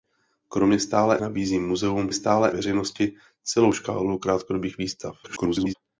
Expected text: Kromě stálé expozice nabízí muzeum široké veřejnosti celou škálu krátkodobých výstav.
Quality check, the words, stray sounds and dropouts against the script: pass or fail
fail